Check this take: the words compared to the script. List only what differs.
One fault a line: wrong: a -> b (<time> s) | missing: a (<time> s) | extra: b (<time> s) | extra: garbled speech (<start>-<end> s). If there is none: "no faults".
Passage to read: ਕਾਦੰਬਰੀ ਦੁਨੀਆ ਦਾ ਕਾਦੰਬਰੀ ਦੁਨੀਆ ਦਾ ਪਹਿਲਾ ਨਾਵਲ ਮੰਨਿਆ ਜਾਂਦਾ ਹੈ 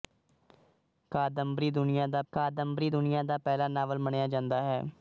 no faults